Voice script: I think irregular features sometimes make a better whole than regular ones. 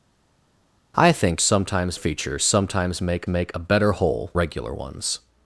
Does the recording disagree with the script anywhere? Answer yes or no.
yes